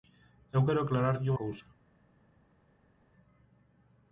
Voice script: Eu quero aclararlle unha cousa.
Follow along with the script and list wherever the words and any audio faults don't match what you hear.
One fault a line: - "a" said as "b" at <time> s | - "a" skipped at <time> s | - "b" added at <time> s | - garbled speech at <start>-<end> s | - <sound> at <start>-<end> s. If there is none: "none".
- "unha" skipped at 1.3 s